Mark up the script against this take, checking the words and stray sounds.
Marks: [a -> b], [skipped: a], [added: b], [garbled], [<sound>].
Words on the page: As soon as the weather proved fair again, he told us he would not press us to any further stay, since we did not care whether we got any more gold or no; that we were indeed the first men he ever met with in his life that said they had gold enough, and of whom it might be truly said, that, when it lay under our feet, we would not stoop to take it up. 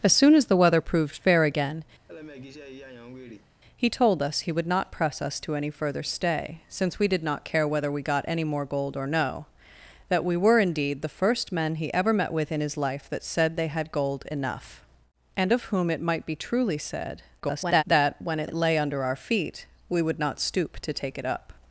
As soon as the weather proved fair again, [laugh] he told us he would not press us to any further stay, since we did not care whether we got any more gold or no; that we were indeed the first men he ever met with in his life that said they had gold enough, and of whom it might be truly said, [garbled] that, when it [added: it] lay under our feet, we would not stoop to take it up.